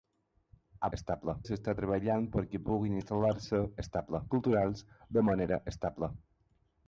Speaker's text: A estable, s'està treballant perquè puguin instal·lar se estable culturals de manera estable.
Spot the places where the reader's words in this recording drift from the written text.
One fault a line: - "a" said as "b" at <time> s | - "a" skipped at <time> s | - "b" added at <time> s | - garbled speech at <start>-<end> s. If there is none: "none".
none